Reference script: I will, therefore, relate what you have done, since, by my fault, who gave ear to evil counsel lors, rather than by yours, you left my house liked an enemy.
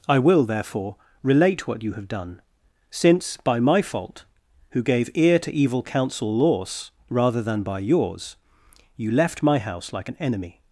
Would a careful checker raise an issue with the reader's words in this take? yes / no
yes